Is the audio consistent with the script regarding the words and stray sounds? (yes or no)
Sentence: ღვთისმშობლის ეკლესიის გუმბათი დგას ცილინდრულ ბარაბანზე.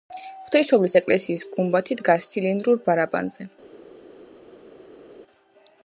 yes